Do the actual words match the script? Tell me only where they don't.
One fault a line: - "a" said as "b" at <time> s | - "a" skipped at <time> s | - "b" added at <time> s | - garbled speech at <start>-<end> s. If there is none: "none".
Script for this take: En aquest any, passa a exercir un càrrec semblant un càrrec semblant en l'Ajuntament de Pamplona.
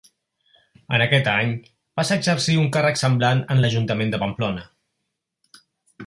- "un càrrec semblant" skipped at 3.4 s